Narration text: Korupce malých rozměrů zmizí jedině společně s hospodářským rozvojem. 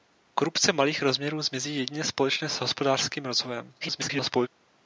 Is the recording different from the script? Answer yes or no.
yes